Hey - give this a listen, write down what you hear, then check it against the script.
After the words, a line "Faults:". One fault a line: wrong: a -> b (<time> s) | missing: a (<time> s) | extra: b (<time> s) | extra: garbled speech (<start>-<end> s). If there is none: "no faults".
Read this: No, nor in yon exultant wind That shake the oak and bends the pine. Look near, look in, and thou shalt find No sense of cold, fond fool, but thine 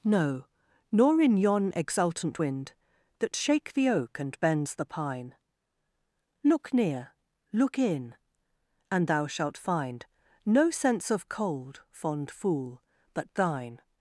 No, nor in yon exultant wind That shake the oak and bends the pine. Look near, look in, and thou shalt find No sense of cold, fond fool, but thine
Faults:
no faults